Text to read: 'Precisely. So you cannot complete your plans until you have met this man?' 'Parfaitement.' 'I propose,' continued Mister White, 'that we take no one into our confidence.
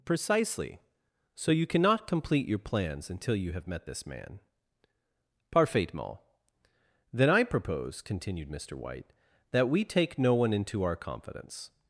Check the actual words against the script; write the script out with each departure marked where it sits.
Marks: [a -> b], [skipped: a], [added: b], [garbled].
'Precisely. So you cannot complete your plans until you have met this man?' 'Parfaitement.' [added: Then] 'I propose,' continued Mister White, 'that we take no one into our confidence.